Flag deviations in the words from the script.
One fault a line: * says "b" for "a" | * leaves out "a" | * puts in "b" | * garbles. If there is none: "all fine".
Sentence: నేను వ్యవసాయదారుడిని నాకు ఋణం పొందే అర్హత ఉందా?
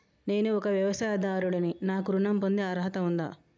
* puts in "ఒక"